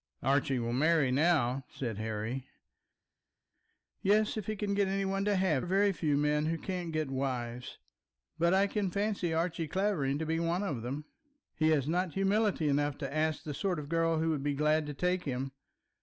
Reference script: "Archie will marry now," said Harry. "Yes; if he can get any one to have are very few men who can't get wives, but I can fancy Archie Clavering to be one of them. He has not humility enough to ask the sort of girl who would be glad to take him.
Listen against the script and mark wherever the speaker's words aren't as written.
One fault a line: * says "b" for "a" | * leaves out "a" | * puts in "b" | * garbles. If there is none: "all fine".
all fine